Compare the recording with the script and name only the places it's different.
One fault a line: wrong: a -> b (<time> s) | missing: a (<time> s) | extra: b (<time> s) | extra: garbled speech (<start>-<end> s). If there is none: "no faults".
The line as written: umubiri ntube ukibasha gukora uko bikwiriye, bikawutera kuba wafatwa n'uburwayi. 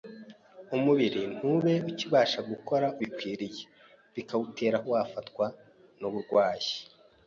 missing: uko (2.9 s)
missing: kuba (4.8 s)